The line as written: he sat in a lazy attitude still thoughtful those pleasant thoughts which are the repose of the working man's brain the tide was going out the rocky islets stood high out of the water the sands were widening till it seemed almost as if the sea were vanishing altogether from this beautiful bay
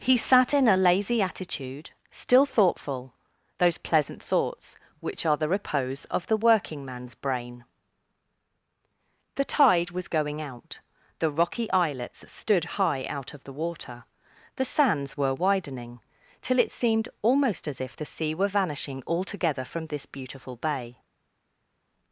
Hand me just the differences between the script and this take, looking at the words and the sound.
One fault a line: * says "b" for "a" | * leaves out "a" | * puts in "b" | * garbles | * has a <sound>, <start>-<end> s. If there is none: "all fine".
all fine